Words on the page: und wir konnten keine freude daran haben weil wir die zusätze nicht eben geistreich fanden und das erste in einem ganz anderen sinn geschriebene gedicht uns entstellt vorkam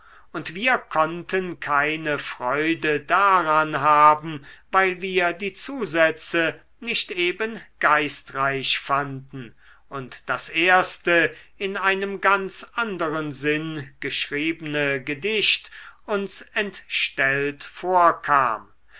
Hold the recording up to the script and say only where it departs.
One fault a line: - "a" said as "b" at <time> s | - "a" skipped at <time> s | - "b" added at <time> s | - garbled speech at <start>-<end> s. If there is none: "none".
none